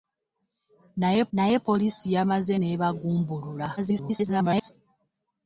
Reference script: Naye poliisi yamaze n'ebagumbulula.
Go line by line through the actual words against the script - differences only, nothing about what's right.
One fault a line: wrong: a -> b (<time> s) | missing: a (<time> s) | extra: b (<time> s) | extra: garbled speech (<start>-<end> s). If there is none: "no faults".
extra: naye (1.3 s)
extra: garbled speech (3.8-4.7 s)